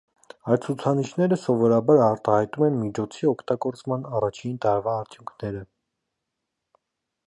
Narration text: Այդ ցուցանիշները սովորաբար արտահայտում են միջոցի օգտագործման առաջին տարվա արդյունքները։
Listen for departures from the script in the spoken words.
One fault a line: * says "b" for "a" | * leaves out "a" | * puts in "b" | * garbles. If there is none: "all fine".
all fine